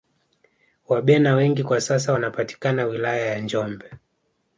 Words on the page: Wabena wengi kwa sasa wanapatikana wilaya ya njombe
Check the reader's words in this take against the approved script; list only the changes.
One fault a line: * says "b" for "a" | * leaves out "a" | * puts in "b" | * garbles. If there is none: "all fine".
all fine